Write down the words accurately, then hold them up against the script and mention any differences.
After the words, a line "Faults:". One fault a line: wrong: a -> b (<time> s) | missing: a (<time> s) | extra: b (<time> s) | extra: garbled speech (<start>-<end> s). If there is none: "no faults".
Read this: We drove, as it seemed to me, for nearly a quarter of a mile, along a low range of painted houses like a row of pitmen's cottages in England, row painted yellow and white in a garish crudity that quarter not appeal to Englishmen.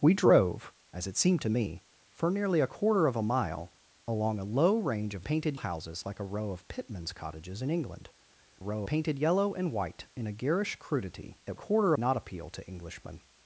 We drove, as it seemed to me, for nearly a quarter of a mile, along a low range of painted houses like a row of pitmen's cottages in England, row painted yellow and white in a garish crudity that quarter not appeal to Englishmen.
Faults:
no faults